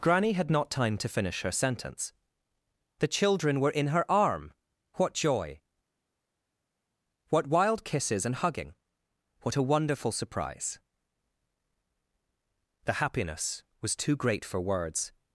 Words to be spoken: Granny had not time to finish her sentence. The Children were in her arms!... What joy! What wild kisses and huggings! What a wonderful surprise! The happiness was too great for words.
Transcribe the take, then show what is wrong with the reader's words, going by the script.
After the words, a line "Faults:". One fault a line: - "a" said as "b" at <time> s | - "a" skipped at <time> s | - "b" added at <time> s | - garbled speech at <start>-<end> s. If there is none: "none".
Granny had not time to finish her sentence. The Children were in her arm!... What joy! What wild kisses and hugging! What a wonderful surprise! The happiness was too great for words.
Faults:
- "arms" said as "arm" at 4.1 s
- "huggings" said as "hugging" at 8.3 s